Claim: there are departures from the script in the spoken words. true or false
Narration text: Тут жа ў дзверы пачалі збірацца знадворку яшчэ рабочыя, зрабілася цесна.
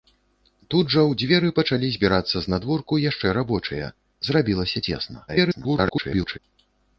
true